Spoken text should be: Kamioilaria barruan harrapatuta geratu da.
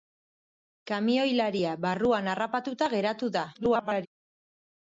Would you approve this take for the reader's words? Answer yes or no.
no